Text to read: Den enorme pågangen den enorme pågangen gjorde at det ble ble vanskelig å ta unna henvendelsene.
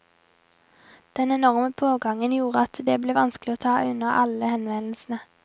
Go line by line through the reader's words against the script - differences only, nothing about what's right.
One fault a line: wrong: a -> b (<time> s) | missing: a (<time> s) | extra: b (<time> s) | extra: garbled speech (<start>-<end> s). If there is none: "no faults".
missing: den enorme pågangen (2.3 s)
missing: ble (3.2 s)
extra: alle (4.2 s)